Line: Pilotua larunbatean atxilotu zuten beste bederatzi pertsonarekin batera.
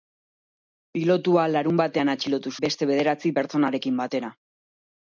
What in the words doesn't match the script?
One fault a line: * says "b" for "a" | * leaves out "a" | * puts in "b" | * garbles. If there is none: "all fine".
* leaves out "zuten"